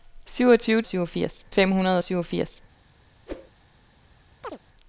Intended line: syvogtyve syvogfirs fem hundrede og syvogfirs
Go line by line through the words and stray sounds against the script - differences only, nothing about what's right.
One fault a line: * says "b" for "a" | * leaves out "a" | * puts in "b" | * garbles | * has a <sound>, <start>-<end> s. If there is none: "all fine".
* has a whoosh, 3.3-3.5 s
* has a chirp, 4.4-4.6 s